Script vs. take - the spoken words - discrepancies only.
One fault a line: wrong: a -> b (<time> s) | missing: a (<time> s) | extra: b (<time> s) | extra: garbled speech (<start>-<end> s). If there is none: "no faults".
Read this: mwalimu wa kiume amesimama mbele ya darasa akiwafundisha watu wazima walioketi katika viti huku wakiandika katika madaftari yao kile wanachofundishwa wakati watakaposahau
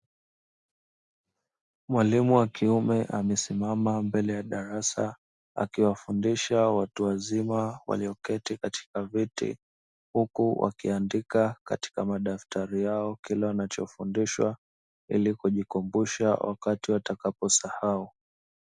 extra: ili kujikumbusha (15.1 s)